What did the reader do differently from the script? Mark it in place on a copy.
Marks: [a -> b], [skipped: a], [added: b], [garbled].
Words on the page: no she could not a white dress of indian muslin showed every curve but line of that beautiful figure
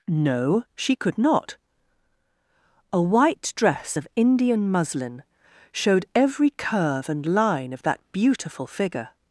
no she could not a white dress of indian muslin showed every curve [but -> and] line of that beautiful figure